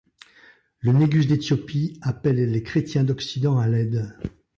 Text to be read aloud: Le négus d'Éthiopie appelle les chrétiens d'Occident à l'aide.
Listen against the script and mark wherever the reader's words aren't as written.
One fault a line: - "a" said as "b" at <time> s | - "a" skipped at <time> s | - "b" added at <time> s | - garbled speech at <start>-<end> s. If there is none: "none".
none